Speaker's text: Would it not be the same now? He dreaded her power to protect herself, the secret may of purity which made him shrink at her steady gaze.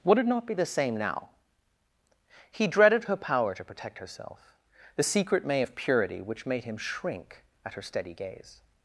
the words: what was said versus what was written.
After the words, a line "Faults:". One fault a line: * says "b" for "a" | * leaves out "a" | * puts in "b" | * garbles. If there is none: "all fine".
Would it not be the same now? He dreaded her power to protect herself, the secret may of purity which made him shrink at her steady gaze.
Faults:
all fine